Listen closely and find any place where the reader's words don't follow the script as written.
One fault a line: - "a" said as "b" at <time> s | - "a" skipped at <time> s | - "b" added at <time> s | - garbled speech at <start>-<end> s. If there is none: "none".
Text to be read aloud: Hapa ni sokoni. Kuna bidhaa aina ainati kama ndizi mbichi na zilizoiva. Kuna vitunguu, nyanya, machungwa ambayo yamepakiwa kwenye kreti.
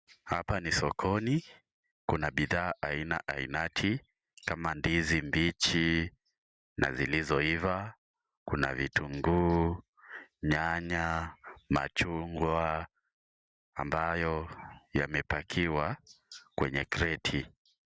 none